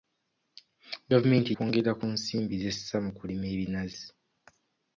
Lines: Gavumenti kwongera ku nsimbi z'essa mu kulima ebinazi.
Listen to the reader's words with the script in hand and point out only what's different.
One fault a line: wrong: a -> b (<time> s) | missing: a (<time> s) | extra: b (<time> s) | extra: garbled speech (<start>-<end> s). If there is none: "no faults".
no faults